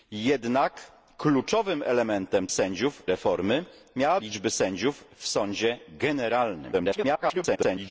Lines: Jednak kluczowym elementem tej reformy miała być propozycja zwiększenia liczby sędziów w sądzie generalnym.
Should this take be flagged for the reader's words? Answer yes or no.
yes